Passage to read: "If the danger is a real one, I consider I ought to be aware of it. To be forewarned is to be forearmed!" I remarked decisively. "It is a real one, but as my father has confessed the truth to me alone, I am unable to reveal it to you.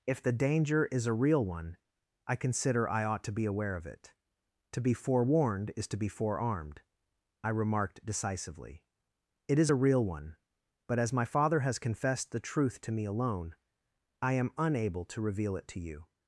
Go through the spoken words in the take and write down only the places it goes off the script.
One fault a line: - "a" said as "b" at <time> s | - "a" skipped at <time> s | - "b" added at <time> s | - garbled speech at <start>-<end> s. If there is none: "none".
none